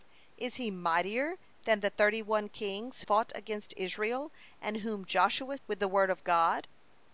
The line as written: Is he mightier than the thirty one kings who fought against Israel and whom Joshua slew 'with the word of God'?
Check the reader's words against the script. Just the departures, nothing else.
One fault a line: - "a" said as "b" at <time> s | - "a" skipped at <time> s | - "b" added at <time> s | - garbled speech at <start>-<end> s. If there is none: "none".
- "who" skipped at 3.0 s
- "slew" skipped at 5.6 s